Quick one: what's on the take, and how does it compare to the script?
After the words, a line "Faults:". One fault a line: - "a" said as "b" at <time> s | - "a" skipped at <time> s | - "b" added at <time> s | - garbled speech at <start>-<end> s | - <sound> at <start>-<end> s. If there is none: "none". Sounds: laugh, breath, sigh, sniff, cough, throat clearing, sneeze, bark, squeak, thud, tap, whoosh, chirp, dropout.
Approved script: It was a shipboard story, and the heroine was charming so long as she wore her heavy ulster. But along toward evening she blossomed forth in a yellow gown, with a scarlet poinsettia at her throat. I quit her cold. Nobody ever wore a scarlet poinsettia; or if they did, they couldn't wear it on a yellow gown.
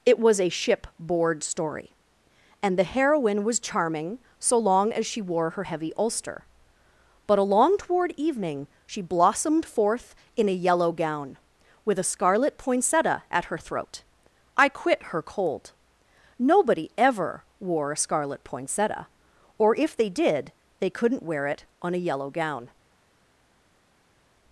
It was a shipboard story, and the heroine was charming so long as she wore her heavy ulster. But along toward evening she blossomed forth in a yellow gown, with a scarlet poinsettia at her throat. I quit her cold. Nobody ever wore a scarlet poinsettia; or if they did, they couldn't wear it on a yellow gown.
Faults:
none